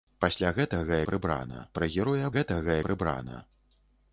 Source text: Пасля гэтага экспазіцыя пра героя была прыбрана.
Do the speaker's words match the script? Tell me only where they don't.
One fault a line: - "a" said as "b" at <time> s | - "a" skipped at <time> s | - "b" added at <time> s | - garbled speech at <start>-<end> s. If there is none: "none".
- "экспазіцыя" said as "прыбрана" at 1.1 s
- "была" said as "гэтага" at 2.4 s